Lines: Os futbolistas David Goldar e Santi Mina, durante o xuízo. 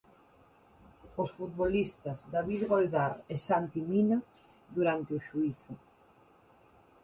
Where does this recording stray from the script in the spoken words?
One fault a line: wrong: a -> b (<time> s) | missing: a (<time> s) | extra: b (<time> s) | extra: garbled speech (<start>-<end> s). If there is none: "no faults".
no faults